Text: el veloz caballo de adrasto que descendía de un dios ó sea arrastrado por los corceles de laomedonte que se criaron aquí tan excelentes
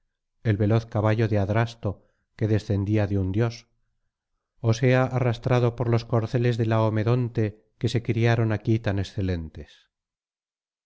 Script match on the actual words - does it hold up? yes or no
yes